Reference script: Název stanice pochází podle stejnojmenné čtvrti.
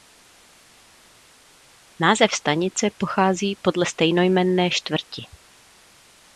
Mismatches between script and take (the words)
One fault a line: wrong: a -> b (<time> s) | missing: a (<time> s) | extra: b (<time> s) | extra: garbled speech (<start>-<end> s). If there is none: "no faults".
no faults